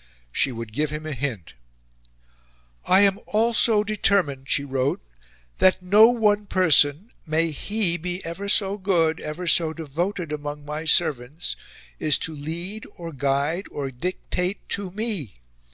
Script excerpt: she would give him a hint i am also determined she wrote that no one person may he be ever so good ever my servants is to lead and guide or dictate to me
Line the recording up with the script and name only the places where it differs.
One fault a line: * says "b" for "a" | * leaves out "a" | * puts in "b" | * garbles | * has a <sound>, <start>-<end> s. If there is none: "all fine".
* puts in "so devoted among"
* says "or" for "and"